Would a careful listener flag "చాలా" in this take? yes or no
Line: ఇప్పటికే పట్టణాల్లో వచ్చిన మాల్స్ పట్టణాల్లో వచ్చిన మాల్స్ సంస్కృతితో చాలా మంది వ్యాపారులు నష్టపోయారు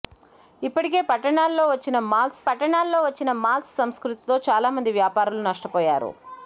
no